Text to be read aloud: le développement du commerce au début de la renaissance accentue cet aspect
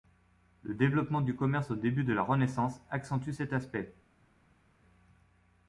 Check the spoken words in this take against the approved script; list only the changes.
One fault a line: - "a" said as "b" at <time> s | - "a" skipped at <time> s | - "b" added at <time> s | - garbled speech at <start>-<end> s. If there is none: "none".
none